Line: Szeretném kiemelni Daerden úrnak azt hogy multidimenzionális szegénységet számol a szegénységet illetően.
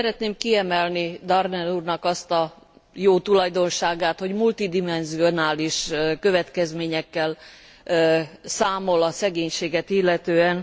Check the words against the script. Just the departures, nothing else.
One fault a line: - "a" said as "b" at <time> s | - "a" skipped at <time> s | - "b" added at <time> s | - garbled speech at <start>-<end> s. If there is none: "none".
- "a jó tulajdonságát" added at 2.3 s
- "szegénységet" said as "következményekkel" at 6.2 s